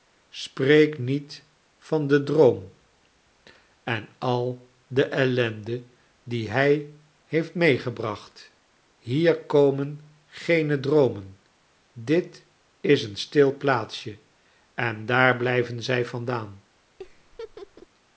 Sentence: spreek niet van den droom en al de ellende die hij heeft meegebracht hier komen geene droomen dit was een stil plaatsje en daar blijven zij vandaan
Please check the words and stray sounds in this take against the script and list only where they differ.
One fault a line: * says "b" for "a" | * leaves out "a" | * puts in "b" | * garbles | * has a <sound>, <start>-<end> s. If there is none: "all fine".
* says "is" for "was"
* has a laugh, 17.0-17.9 s